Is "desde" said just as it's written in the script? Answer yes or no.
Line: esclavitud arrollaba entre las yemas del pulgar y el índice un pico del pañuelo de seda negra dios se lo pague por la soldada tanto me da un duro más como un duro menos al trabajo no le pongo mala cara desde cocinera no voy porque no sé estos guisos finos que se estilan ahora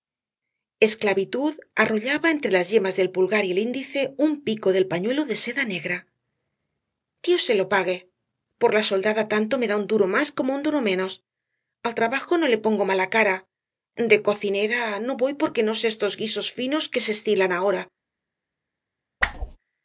no